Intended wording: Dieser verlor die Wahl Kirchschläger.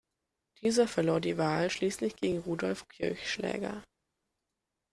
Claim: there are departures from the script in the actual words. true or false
true